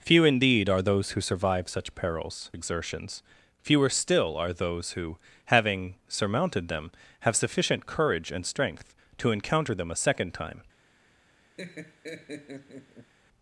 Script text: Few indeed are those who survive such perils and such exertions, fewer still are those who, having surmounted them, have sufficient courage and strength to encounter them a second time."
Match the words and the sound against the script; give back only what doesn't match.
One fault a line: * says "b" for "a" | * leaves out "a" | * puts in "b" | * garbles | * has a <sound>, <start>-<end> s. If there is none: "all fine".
* leaves out "and such"
* has a laugh, 11.6-13.1 s